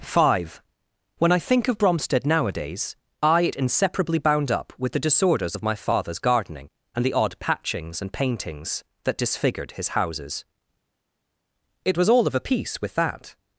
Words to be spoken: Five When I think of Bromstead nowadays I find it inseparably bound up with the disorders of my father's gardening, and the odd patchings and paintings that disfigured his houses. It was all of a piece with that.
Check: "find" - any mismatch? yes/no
yes